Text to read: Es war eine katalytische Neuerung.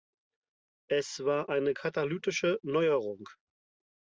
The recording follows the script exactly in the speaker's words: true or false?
true